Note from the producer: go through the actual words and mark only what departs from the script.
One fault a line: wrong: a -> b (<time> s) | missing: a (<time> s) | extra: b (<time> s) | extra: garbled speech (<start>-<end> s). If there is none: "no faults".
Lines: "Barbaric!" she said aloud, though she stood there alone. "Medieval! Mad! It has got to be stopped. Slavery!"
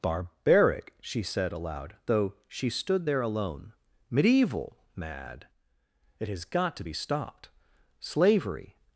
no faults